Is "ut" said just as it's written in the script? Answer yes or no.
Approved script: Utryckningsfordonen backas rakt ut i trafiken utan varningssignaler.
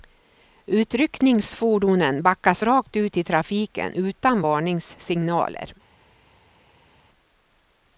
yes